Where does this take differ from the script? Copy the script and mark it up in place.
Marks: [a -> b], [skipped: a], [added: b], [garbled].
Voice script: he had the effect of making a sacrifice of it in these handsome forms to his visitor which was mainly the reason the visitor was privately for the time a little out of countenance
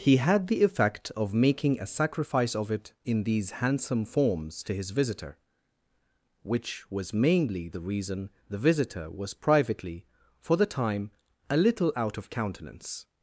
he had the effect of making a sacrifice of it in these handsome forms to his visitor which was mainly the reason the visitor was privately for the time a little out of countenance